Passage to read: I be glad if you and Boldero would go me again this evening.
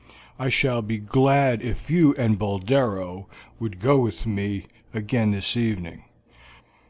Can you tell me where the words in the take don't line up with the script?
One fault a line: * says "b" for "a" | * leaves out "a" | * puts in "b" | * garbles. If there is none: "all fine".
* puts in "shall"
* puts in "with"